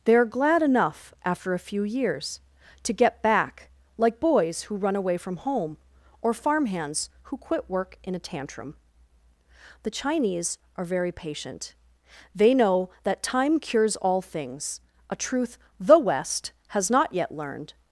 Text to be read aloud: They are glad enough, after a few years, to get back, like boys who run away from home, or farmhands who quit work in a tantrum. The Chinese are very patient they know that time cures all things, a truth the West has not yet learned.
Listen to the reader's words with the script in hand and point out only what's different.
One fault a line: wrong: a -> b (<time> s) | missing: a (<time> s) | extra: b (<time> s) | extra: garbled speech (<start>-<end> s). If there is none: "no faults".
no faults